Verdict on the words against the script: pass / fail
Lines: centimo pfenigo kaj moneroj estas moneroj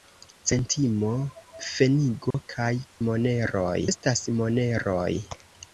pass